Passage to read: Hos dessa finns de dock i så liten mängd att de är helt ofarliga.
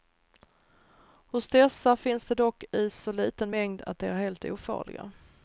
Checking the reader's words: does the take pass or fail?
pass